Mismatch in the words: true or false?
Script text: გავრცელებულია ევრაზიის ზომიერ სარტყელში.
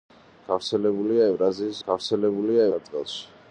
true